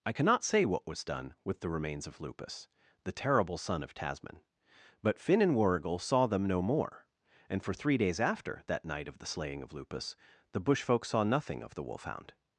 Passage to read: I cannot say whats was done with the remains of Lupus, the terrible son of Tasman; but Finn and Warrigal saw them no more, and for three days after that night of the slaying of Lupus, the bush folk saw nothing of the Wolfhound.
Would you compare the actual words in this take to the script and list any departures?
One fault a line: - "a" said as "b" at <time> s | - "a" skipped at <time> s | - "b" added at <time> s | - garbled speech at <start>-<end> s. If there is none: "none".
- "whats" said as "what" at 0.6 s